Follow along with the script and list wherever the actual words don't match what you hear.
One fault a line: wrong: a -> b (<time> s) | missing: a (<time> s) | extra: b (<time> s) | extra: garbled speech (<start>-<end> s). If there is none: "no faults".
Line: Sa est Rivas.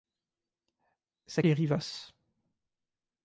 no faults